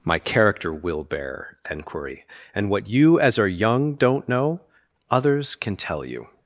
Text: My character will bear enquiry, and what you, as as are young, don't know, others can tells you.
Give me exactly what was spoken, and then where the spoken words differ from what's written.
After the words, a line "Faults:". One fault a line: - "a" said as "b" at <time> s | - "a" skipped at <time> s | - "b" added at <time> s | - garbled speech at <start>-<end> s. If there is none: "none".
My character will bear enquiry, and what you, as are young, don't know, others can tell you.
Faults:
- "as" skipped at 3.4 s
- "tells" said as "tell" at 5.8 s